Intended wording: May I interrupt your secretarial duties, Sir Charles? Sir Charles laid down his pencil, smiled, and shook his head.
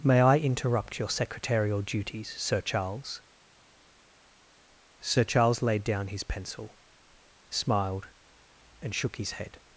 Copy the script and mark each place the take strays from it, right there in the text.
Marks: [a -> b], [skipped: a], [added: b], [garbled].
May I interrupt your secretarial duties, Sir Charles? Sir Charles laid down his pencil, smiled, and shook his head.